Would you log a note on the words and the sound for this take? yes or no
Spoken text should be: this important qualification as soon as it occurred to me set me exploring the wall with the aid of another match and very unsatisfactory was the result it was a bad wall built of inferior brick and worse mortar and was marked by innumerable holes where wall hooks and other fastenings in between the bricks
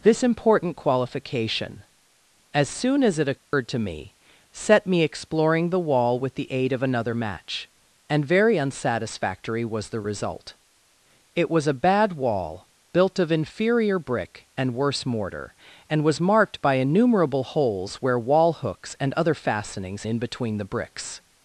yes